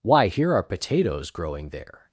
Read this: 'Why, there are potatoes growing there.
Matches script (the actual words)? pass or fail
fail